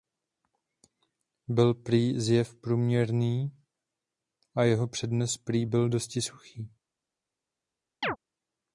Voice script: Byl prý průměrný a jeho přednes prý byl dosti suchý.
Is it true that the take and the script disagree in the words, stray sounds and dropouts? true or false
true